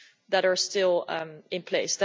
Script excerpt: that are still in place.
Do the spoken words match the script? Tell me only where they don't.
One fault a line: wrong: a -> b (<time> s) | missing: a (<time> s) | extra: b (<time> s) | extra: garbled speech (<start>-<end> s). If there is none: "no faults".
no faults